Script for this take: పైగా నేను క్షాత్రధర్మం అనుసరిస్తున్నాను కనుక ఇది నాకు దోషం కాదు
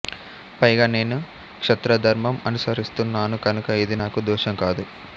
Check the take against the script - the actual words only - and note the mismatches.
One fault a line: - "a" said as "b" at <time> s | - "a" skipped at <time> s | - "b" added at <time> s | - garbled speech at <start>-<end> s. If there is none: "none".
none